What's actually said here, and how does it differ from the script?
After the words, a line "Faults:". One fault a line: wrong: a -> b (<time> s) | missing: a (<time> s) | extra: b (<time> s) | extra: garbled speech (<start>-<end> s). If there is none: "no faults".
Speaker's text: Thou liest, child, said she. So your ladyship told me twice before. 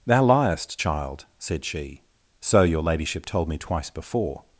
Thou liest, child, said she. So your ladyship told me twice before.
Faults:
no faults